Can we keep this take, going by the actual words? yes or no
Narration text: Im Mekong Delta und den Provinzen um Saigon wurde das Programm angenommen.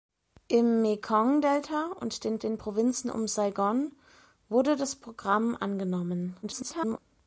no